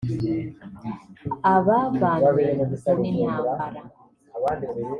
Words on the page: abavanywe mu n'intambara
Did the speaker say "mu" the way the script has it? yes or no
yes